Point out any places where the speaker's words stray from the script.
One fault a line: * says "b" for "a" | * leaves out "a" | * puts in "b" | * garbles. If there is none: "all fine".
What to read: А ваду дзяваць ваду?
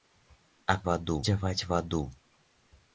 all fine